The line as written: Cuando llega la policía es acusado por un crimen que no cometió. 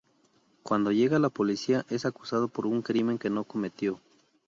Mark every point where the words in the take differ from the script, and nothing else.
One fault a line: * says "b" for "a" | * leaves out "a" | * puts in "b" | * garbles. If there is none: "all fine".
all fine